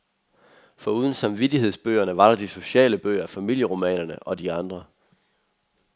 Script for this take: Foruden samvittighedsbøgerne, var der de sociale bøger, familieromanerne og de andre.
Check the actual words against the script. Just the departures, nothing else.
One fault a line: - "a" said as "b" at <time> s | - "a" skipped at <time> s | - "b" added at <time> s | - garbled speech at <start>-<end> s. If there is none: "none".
none